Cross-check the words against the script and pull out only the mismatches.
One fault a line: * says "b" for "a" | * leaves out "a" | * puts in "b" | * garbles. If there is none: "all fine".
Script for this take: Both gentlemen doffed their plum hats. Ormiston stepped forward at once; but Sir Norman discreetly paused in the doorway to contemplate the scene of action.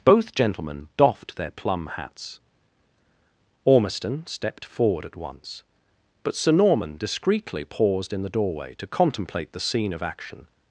all fine